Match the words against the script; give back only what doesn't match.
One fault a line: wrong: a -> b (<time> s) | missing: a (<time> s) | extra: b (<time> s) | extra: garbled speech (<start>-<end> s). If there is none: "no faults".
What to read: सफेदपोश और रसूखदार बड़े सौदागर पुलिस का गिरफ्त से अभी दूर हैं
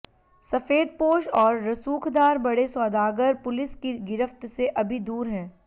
wrong: का -> की (3.8 s)